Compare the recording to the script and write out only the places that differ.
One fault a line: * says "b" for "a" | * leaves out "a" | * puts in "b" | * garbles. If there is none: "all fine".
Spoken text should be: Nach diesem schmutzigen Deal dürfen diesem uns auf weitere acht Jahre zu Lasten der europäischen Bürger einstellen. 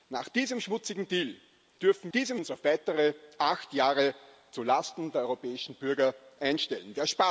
all fine